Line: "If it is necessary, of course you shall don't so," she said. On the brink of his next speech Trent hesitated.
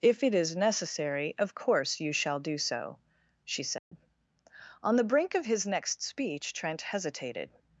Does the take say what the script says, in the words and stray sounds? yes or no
no